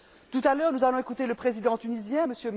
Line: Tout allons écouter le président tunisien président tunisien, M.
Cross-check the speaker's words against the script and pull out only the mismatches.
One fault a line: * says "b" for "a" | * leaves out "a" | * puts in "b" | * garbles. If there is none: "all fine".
* puts in "à l'heure nous"
* leaves out "président tunisien"